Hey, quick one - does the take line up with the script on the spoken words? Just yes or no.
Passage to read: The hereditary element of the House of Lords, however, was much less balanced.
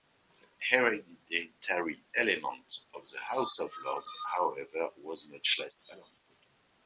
yes